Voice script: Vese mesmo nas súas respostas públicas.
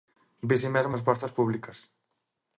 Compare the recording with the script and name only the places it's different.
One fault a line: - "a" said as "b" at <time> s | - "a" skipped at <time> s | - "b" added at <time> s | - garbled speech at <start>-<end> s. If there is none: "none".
- "nas súas" skipped at 0.9 s